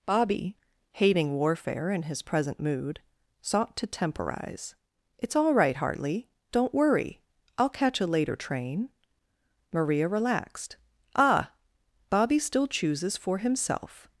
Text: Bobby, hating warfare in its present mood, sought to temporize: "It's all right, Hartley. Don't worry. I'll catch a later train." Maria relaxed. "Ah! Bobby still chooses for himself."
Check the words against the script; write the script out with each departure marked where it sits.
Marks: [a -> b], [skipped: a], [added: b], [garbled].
Bobby, hating warfare in [its -> his] present mood, sought to temporize: "It's all right, Hartley. Don't worry. I'll catch a later train." Maria relaxed. "Ah! Bobby still chooses for himself."